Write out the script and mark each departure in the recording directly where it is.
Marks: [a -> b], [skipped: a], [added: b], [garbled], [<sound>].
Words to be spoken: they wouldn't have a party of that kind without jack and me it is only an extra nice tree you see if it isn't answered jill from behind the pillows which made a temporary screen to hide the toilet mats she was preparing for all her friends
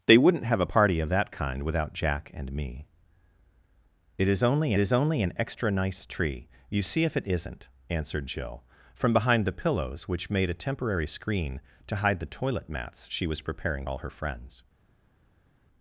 they wouldn't have a party of that kind without jack and me it is only [added: is only] an extra nice tree you see if it isn't answered jill from behind the pillows which made a temporary screen to hide the toilet mats she was preparing [skipped: for] all her friends